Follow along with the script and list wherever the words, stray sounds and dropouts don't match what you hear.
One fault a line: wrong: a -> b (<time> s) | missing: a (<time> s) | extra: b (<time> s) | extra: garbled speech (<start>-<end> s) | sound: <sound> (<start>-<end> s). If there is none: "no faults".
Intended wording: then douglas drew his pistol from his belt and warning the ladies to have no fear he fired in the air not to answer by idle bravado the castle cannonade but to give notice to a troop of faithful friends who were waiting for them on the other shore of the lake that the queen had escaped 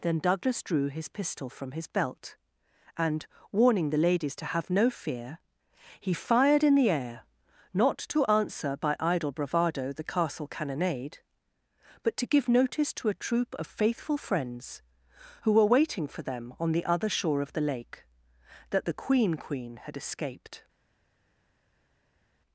extra: queen (19.3 s)